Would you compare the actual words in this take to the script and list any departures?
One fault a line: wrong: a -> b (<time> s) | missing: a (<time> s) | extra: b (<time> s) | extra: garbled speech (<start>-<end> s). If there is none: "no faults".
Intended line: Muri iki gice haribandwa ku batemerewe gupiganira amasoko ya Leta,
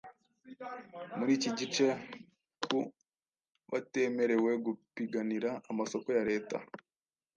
missing: haribandwa (1.9 s)